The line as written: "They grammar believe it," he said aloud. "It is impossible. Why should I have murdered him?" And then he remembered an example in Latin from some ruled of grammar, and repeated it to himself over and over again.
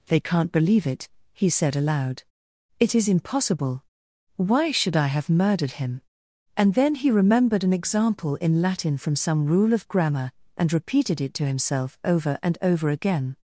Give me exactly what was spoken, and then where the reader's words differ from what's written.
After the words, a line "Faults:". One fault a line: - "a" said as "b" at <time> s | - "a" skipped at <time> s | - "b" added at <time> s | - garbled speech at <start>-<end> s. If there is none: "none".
"They can't believe it," he said aloud. "It is impossible. Why should I have murdered him?" And then he remembered an example in Latin from some rule of grammar, and repeated it to himself over and over again.
Faults:
- "grammar" said as "can't" at 0.2 s
- "ruled" said as "rule" at 9.4 s